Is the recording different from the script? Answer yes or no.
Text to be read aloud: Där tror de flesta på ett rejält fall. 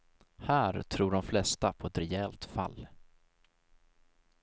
yes